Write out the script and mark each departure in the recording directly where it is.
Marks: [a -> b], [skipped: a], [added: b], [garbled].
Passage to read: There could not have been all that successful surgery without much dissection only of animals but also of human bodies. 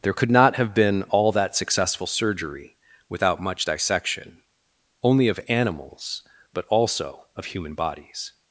There could not have been all that successful surgery without much dissection only of animals but also of human bodies.